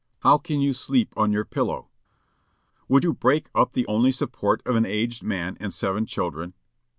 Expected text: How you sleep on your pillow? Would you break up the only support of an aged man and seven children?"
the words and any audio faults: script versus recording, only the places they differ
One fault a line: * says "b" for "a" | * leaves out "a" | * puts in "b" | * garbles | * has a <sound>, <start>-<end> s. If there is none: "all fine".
* puts in "can"